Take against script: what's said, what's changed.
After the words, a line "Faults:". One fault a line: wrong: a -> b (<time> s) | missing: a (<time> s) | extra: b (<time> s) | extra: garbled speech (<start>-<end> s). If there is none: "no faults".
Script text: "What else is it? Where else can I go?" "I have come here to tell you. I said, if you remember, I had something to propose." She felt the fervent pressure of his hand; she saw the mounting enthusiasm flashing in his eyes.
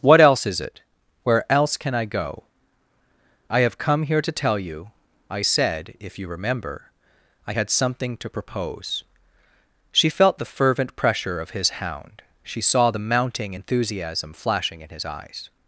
"What else is it? Where else can I go?" "I have come here to tell you. I said, if you remember, I had something to propose." She felt the fervent pressure of his hound; she saw the mounting enthusiasm flashing in his eyes.
Faults:
wrong: hand -> hound (11.8 s)